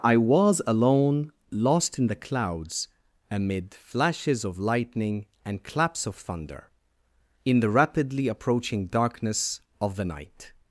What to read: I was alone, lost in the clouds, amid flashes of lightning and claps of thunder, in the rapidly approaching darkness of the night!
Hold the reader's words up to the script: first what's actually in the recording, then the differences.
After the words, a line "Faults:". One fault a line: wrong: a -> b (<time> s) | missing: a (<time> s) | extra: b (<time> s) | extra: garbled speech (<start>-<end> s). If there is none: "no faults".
I was alone, lost in the clouds, amid flashes of lightning and claps of thunder, in the rapidly approaching darkness of the night!
Faults:
no faults